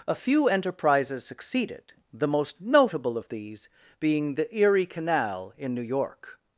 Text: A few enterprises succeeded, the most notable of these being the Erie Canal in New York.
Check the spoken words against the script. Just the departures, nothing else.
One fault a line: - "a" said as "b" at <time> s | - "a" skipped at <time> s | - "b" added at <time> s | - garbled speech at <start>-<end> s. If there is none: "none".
none